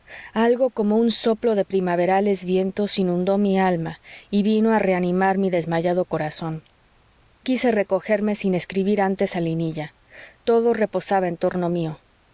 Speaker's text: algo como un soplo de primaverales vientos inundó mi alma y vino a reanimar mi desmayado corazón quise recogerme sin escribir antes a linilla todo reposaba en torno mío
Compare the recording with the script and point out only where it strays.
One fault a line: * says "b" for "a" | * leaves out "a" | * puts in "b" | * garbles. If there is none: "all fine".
all fine